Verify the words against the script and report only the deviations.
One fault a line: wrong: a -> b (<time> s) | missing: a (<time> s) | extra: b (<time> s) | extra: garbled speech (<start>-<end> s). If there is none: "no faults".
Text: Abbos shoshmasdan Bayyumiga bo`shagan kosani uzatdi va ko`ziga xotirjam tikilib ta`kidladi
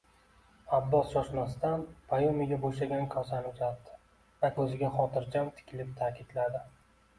no faults